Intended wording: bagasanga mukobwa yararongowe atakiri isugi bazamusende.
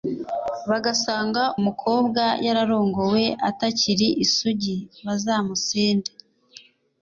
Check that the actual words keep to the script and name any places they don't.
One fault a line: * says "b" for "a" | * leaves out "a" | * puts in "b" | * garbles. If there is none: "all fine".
all fine